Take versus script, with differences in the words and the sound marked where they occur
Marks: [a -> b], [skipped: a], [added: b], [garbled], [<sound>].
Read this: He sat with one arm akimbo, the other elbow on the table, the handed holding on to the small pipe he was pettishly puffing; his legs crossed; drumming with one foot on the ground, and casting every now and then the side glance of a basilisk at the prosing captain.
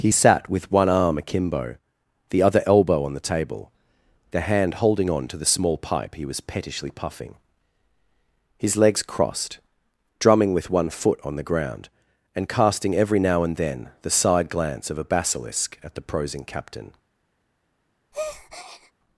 He sat with one arm akimbo, the other elbow on the table, the [handed -> hand] holding on to the small pipe he was pettishly puffing; his legs crossed; drumming with one foot on the ground, and casting every now and then the side glance of a basilisk at the prosing captain. [breath]